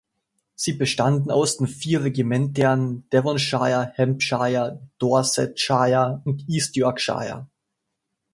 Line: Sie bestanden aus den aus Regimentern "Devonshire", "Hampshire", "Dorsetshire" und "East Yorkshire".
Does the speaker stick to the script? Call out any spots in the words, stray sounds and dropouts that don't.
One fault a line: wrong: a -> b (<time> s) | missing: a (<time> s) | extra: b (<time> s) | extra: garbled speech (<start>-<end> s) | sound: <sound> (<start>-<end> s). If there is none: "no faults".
wrong: aus -> vier (1.7 s)